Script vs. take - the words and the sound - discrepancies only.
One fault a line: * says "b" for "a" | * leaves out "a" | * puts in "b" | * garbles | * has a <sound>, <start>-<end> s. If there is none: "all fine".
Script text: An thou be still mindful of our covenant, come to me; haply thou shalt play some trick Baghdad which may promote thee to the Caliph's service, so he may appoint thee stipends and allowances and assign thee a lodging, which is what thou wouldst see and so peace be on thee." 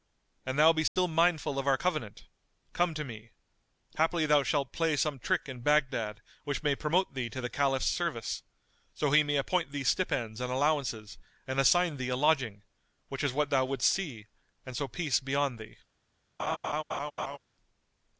* has a dropout, 0.9-1.0 s
* puts in "in"
* has a laugh, 16.4-17.4 s